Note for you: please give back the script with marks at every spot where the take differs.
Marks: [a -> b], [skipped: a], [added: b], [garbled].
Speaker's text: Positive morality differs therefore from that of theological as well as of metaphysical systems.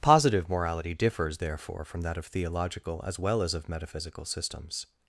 Positive morality differs therefore from that of theological as well as of metaphysical systems.